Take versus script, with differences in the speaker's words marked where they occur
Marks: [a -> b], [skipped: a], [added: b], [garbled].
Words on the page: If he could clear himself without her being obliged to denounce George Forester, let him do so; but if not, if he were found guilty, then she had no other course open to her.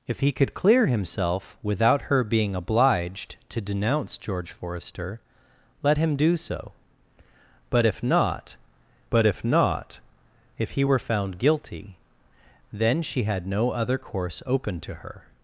If he could clear himself without her being obliged to denounce George Forester, let him do so; but if not, [added: but if not] if he were found guilty, then she had no other course open to her.